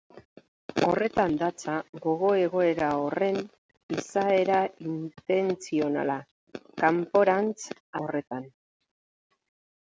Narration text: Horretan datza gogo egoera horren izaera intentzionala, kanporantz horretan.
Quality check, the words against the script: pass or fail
pass